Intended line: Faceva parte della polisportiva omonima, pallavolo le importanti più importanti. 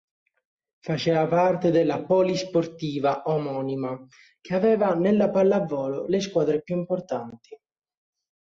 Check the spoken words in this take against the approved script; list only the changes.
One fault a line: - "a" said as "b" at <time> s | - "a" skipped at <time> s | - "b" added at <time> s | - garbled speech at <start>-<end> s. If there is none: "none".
- "che aveva nella" added at 4.4 s
- "importanti" said as "squadre" at 6.2 s